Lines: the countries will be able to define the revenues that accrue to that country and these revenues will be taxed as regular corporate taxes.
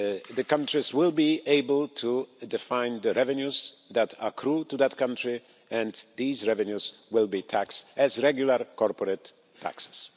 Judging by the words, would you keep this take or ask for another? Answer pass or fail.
pass